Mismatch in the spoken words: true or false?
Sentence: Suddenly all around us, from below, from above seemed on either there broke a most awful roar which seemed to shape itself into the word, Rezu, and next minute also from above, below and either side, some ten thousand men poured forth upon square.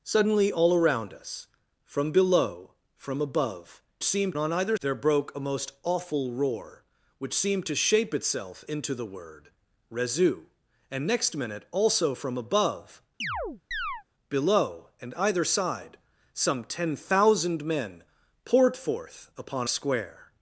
false